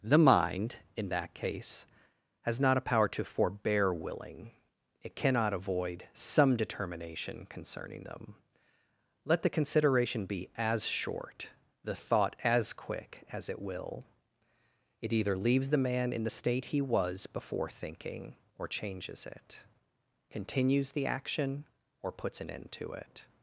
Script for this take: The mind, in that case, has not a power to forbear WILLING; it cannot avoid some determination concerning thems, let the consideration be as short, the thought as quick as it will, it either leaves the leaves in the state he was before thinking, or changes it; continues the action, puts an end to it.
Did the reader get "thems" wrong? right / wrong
wrong